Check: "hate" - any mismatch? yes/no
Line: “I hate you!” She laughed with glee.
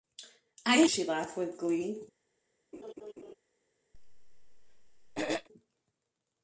yes